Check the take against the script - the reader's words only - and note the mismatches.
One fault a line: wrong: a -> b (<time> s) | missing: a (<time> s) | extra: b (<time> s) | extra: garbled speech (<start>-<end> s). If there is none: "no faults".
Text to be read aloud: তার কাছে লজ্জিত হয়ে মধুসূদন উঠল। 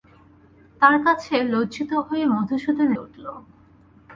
no faults